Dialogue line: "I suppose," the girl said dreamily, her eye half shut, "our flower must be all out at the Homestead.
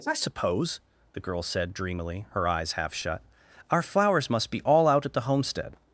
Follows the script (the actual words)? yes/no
no